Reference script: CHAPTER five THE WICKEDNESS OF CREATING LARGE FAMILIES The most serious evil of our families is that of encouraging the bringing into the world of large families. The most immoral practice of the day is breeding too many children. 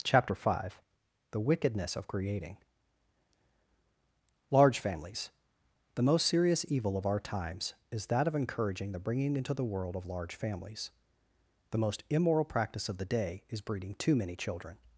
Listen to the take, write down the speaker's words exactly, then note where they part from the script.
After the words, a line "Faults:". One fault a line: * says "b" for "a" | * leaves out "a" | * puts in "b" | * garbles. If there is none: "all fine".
CHAPTER five THE WICKEDNESS OF CREATING LARGE FAMILIES The most serious evil of our times is that of encouraging the bringing into the world of large families. The most immoral practice of the day is breeding too many children.
Faults:
* says "times" for "families"